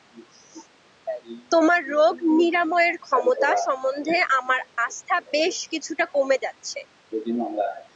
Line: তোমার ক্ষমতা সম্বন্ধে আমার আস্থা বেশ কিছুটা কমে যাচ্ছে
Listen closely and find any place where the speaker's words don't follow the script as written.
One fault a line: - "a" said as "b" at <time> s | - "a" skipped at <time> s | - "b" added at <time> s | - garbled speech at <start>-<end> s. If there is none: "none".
- "রোগ নিরাময়ের" added at 1.9 s